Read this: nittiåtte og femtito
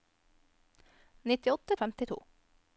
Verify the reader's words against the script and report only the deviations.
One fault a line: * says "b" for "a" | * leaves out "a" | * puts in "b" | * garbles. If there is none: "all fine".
all fine